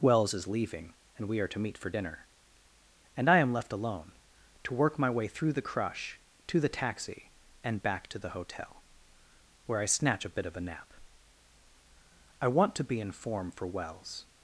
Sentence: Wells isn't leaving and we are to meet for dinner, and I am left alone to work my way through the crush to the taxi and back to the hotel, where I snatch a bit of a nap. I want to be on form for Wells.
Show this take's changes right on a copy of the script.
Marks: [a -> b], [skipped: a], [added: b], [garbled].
Wells [isn't -> is] leaving and we are to meet for dinner, and I am left alone to work my way through the crush to the taxi and back to the hotel, where I snatch a bit of a nap. I want to be [on -> in] form for Wells.